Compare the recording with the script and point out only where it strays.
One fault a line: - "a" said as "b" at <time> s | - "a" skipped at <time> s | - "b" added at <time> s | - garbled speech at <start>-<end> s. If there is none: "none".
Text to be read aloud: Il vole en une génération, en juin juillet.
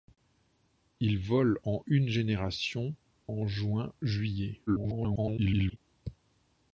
- garbled speech at 4.7-5.8 s